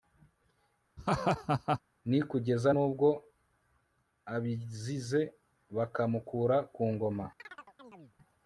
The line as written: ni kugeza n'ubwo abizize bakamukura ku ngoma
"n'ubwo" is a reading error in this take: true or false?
false